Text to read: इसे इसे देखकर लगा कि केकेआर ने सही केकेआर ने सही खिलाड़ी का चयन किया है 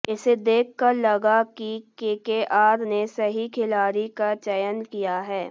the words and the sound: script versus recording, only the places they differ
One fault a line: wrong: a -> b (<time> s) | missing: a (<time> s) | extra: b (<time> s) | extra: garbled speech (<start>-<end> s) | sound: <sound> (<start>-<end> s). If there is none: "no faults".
missing: इसे (0.3 s)
missing: केकेआर ने सही (3.5 s)